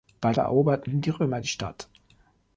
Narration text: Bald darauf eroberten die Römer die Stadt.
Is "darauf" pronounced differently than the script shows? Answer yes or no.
yes